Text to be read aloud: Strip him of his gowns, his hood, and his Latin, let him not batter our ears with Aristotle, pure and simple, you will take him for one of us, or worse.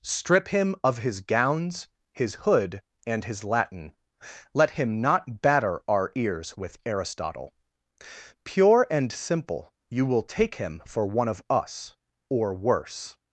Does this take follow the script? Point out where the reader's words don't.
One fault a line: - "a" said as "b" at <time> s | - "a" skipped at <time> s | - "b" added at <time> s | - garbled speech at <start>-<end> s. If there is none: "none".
none